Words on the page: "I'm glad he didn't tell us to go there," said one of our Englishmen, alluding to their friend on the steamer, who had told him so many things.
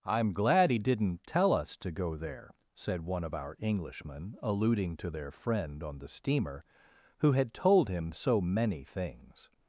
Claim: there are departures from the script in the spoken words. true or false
false